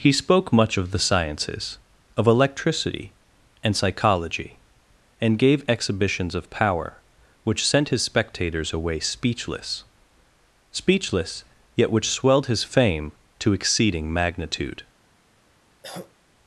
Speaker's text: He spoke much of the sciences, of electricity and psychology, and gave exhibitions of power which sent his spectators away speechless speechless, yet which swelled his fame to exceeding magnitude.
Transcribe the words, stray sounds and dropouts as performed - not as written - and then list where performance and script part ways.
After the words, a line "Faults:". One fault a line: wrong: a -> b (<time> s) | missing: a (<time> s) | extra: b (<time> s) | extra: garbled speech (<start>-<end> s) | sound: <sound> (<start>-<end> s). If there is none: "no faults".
He spoke much of the sciences, of electricity and psychology, and gave exhibitions of power which sent his spectators away speechless speechless, yet which swelled his fame to exceeding magnitude.
Faults:
sound: cough (15.8-16.1 s)